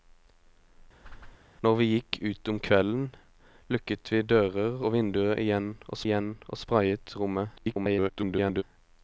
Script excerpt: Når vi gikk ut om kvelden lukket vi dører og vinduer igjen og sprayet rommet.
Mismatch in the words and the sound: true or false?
true